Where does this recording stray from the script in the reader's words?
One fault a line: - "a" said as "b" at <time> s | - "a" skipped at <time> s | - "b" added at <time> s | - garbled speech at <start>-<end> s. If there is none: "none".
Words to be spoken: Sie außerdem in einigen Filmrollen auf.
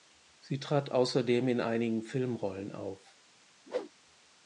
- "trat" added at 0.6 s